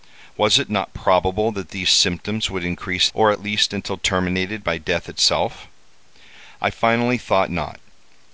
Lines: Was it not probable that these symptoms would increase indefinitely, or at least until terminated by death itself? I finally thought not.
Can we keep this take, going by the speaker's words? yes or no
no